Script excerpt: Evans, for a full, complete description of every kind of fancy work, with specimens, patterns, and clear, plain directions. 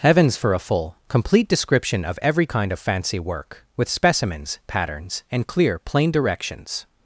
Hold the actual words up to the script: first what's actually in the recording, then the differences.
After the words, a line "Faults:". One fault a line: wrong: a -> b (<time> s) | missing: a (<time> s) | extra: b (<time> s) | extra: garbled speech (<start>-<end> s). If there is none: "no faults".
Heavens, for a full, complete description of every kind of fancy work, with specimens, patterns, and clear, plain directions.
Faults:
wrong: Evans -> Heavens (0.0 s)